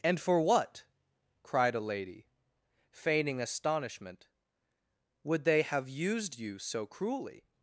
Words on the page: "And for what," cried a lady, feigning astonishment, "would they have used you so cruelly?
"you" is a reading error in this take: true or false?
false